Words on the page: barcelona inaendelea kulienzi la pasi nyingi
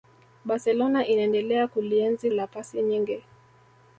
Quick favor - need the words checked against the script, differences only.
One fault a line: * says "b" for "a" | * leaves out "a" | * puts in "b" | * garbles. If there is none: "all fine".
all fine